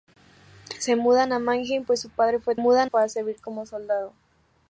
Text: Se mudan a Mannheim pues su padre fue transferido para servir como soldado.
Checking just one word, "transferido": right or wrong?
wrong